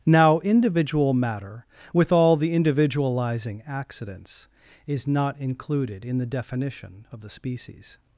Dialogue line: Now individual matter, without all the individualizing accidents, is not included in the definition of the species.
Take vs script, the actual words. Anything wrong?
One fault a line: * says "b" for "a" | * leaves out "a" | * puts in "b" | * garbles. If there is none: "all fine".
* says "with" for "without"